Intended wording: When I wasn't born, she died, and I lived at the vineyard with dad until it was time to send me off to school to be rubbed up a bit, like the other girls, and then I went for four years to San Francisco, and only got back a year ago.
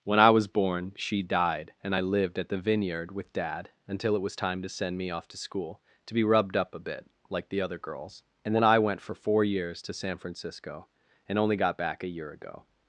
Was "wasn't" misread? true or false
true